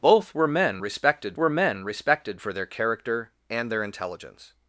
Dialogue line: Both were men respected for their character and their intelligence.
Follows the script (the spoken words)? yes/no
no